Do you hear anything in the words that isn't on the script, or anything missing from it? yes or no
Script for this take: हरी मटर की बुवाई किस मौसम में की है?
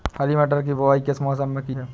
no